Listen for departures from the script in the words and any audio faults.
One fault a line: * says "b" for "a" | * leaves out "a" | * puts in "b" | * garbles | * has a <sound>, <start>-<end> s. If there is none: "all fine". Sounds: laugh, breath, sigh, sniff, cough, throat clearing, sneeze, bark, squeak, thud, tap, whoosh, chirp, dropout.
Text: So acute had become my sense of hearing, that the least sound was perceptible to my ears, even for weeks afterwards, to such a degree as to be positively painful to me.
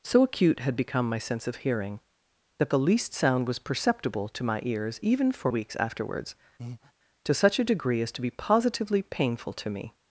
* has a breath, 6.6-6.9 s